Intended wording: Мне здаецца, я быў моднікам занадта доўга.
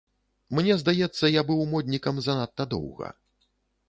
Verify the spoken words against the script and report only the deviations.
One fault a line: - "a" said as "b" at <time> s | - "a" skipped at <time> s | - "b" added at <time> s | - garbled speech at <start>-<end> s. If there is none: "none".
none